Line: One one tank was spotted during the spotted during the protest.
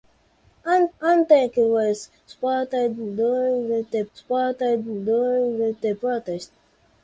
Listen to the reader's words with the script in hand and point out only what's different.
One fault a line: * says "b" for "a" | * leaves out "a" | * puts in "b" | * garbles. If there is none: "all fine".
all fine